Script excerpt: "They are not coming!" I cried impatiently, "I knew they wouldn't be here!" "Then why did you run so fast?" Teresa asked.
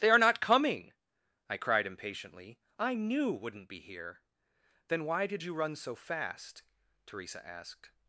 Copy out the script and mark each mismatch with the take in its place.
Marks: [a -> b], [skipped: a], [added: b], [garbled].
"They are not coming!" I cried impatiently, "I knew [skipped: they] wouldn't be here!" "Then why did you run so fast?" Teresa asked.